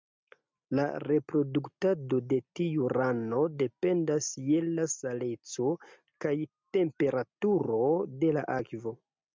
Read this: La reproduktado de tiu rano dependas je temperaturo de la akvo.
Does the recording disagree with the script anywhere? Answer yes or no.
yes